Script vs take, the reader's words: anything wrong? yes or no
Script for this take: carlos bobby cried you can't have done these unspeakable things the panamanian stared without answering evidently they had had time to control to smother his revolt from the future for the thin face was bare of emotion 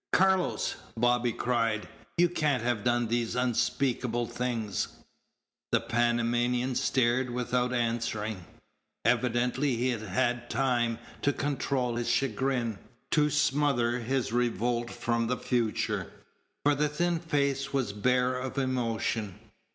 yes